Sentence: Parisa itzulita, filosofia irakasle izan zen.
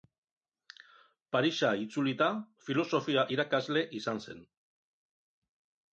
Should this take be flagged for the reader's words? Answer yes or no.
no